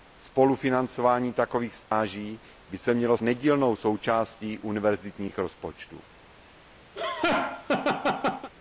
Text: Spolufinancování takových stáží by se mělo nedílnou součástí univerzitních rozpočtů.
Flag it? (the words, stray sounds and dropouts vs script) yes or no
yes